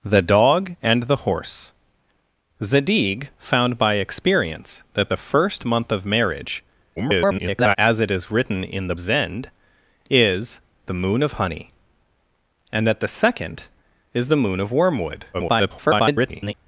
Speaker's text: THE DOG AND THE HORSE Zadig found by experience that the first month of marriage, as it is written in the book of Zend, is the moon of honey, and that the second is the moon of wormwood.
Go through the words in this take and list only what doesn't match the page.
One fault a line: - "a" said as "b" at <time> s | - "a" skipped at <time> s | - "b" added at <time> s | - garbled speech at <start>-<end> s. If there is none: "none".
- garbled speech at 7.0-7.8 s
- "book of" skipped at 8.9 s
- garbled speech at 15.3-16.5 s